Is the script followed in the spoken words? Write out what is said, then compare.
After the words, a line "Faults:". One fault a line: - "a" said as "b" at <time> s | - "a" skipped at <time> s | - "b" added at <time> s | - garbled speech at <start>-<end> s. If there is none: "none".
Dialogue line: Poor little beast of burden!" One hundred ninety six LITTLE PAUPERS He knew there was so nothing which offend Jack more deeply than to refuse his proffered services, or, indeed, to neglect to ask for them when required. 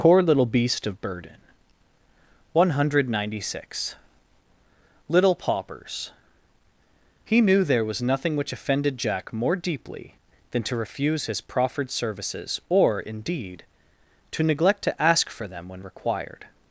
Poor little beast of burden!" One hundred ninety six LITTLE PAUPERS He knew there was nothing which offended Jack more deeply than to refuse his proffered services, or, indeed, to neglect to ask for them when required.
Faults:
- "so" skipped at 8.0 s
- "offend" said as "offended" at 8.5 s